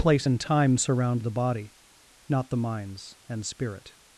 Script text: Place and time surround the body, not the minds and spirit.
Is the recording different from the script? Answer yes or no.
no